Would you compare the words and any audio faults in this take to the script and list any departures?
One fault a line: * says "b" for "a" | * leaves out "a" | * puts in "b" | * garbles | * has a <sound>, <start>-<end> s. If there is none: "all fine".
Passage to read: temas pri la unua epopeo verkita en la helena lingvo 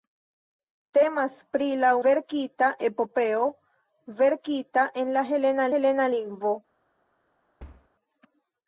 * says "verkita" for "unua"
* puts in "helena"
* has a thud, 7.6-7.9 s